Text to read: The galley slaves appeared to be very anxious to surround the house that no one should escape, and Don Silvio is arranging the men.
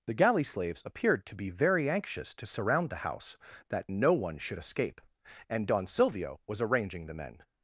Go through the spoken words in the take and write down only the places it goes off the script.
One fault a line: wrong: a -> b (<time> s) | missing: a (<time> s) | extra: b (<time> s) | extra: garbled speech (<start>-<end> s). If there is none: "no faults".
wrong: is -> was (6.5 s)